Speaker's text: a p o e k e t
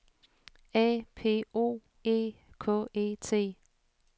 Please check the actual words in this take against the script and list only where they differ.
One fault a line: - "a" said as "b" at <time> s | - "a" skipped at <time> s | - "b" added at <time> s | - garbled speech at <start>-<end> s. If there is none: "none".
none